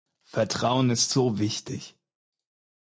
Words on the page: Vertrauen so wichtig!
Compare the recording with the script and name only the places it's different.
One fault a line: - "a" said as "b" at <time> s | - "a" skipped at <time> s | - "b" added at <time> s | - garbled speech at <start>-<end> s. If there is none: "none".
- "ist" added at 0.9 s